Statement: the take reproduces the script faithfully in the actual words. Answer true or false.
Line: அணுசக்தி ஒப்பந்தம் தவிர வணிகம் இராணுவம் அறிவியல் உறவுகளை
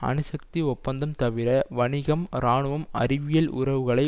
true